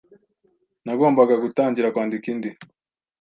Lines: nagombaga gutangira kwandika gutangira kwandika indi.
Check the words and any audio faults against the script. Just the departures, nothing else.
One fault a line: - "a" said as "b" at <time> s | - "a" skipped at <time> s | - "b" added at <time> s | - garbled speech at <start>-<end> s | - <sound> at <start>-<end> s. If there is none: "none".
- "gutangira kwandika" skipped at 2.3 s